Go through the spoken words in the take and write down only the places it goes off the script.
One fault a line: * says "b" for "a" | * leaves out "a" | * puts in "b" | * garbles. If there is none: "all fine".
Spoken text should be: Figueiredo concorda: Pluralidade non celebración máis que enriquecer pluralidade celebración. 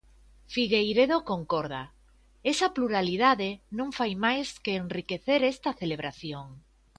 * puts in "Esa"
* says "fai" for "celebración"
* says "esta" for "pluralidade"